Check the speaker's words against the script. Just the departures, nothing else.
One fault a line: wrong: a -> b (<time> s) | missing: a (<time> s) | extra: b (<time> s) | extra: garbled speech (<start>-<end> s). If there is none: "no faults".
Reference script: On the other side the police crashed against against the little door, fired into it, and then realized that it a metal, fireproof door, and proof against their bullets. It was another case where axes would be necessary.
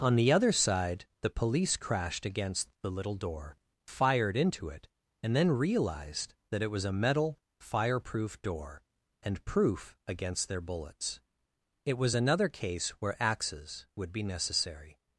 missing: against (2.7 s)
extra: was (6.7 s)